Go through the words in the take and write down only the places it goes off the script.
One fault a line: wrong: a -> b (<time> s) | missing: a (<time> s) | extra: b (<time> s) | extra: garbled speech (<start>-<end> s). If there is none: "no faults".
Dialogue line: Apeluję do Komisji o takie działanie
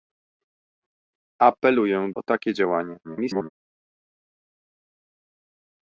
missing: do Komisji (2.1 s)
extra: garbled speech (3.0-3.5 s)